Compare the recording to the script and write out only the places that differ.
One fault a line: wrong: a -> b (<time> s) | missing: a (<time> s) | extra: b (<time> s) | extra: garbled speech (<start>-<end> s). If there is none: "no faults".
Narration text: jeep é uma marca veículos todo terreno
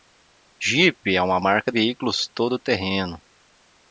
no faults